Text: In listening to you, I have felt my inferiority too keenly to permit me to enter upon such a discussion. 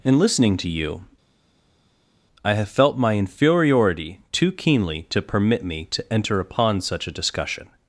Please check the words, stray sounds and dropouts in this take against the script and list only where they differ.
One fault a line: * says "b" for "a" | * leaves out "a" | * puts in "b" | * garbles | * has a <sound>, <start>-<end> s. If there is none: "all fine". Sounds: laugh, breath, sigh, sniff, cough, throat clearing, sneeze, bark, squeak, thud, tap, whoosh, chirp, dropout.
all fine